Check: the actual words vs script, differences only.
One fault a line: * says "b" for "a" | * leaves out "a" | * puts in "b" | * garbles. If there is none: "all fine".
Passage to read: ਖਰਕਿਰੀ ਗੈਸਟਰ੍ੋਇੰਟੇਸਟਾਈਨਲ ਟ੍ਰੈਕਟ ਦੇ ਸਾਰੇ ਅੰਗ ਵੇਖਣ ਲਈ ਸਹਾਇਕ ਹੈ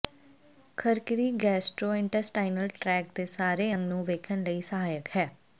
* puts in "ਨੂੰ"